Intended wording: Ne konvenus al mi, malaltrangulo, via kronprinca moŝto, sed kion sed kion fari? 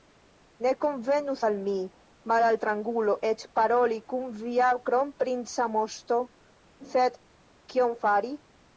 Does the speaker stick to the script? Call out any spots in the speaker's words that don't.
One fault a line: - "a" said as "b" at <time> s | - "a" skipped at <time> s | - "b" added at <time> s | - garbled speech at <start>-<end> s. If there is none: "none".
- "eĉ paroli kun" added at 3.3 s
- "sed kion" skipped at 8.0 s